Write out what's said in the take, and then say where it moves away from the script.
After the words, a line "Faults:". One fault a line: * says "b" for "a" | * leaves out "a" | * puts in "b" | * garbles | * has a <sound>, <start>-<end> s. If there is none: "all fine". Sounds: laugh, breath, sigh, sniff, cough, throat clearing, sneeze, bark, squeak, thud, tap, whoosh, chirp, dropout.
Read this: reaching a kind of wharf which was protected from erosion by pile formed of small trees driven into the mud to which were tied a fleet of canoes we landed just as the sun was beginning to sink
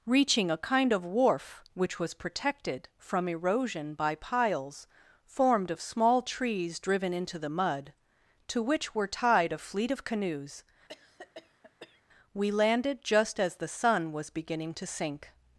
reaching a kind of wharf which was protected from erosion by piles formed of small trees driven into the mud to which were tied a fleet of canoes we landed just as the sun was beginning to sink
Faults:
* says "piles" for "pile"
* has a cough, 10.9-12.0 s